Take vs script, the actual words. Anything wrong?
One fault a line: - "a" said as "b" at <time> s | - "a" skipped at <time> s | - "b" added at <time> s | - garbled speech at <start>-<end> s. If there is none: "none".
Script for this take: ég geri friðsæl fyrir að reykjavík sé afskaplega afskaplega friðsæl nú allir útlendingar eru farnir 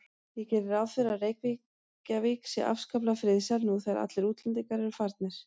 - "friðsæl" said as "ráð" at 0.7 s
- "afskaplega" skipped at 3.2 s
- "þegar" added at 3.9 s